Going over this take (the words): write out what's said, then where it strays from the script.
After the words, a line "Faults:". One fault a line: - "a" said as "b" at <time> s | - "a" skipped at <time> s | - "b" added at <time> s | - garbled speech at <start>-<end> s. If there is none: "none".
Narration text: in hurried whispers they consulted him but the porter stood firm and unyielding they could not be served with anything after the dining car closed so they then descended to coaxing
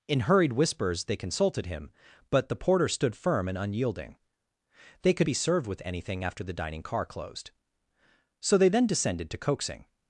in hurried whispers they consulted him but the porter stood firm and unyielding they could be served with anything after the dining car closed so they then descended to coaxing
Faults:
- "not" skipped at 5.3 s